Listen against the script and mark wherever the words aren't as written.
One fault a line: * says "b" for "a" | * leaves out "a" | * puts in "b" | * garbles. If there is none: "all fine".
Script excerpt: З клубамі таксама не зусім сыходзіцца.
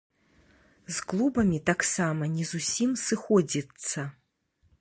all fine